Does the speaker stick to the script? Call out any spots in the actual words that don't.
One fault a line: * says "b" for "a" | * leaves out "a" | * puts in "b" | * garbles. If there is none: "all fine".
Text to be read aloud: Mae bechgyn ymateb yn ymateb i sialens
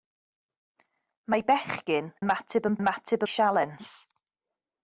all fine